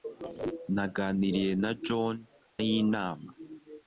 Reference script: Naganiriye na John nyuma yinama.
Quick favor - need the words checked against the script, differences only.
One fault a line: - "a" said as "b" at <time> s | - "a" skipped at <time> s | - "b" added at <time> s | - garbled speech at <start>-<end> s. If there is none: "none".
- "nyuma" skipped at 2.1 s